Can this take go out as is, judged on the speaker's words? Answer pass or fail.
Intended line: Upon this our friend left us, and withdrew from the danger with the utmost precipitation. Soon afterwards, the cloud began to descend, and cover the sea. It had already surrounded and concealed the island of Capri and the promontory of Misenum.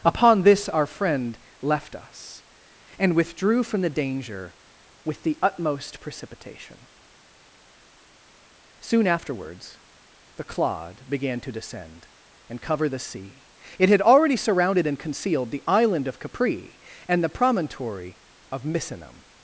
fail